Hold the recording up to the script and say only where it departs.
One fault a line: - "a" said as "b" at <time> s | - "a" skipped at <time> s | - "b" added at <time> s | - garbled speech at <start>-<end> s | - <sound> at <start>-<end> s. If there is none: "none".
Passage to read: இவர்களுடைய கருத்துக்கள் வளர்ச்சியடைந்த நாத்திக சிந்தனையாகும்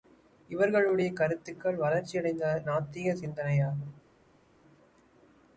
none